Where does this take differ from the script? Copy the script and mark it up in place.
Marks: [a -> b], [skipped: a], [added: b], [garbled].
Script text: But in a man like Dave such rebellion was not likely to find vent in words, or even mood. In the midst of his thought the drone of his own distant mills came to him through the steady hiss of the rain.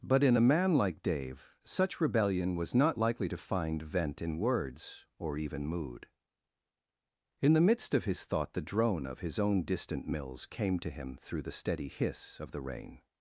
But in a man like Dave such rebellion was not likely to find vent in words, or even mood. In the midst of his thought the drone of his own distant mills came to him through the steady hiss of the rain.